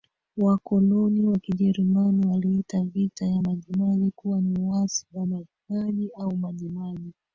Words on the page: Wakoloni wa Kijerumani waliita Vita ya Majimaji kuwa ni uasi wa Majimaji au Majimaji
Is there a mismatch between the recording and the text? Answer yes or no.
no